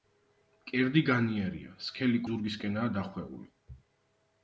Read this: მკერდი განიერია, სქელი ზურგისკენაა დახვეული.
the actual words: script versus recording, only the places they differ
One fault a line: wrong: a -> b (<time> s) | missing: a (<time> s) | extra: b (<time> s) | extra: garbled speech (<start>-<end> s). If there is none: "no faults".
no faults